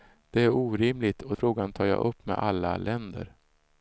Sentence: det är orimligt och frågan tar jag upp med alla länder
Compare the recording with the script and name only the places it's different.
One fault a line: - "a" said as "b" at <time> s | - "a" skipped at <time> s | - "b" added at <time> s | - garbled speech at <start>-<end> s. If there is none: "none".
none